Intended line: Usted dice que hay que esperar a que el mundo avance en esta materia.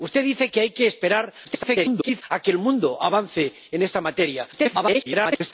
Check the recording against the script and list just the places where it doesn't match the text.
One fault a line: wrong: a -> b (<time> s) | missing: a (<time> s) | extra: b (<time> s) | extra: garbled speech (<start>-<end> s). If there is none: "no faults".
extra: garbled speech (1.4-2.2 s)
extra: garbled speech (4.5-5.5 s)